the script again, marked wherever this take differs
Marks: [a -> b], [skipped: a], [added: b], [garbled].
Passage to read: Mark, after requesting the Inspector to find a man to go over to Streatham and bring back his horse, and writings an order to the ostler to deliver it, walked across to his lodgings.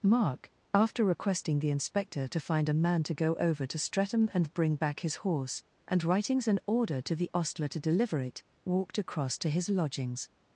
Mark, after requesting the Inspector to find a man to go over to Streatham and bring back his horse, and writings an order to the ostler to deliver it, walked across to his lodgings.